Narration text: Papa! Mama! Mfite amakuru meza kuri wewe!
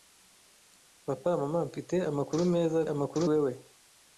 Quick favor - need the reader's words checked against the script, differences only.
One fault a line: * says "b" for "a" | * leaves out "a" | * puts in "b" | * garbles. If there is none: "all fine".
* says "amakuru" for "kuri"